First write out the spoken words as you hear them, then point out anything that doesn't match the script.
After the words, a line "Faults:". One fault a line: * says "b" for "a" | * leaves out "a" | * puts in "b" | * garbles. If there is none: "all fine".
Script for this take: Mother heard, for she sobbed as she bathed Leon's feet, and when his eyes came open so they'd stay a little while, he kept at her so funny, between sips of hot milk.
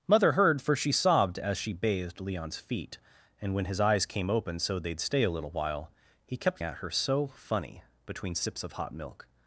Mother heard, for she sobbed as she bathed Leon's feet, and when his eyes came open so they'd stay a little while, he kept at her so funny, between sips of hot milk.
Faults:
all fine